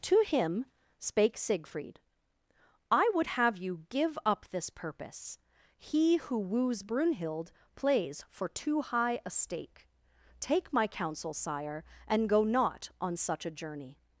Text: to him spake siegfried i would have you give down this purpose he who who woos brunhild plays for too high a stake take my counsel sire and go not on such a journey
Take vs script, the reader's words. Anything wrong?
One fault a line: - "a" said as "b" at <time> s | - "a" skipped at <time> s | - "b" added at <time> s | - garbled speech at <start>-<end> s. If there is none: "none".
- "down" said as "up" at 4.2 s
- "who" skipped at 6.4 s